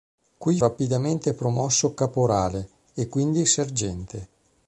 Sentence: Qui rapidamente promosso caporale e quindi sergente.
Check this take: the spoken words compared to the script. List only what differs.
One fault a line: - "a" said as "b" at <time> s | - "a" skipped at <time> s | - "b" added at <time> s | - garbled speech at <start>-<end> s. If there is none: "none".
none